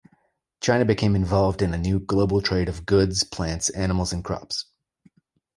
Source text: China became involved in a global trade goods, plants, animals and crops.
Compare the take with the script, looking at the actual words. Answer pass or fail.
fail